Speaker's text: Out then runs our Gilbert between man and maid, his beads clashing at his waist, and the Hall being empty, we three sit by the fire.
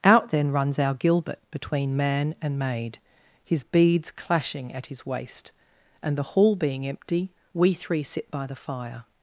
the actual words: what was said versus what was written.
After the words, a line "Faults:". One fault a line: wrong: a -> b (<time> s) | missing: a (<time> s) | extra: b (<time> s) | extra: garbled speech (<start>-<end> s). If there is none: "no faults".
Out then runs our Gilbert between man and maid, his beads clashing at his waist, and the Hall being empty, we three sit by the fire.
Faults:
no faults